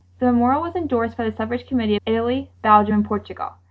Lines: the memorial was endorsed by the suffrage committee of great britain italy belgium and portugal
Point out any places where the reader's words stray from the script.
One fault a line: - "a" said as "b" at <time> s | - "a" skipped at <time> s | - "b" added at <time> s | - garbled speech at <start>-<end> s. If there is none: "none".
- "of great britain" skipped at 1.9 s